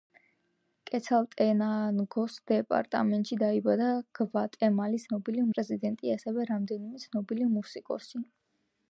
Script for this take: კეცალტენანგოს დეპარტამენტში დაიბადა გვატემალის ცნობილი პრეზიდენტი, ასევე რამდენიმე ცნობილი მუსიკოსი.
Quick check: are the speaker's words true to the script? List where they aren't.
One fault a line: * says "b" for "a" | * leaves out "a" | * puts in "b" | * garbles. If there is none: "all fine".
all fine